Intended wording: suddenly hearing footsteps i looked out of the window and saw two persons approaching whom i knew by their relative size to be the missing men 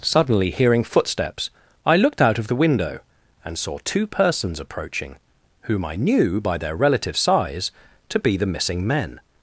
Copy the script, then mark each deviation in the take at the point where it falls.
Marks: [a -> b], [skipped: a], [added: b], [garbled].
suddenly hearing footsteps i looked out of the window and saw two persons approaching whom i knew by their relative size to be the missing men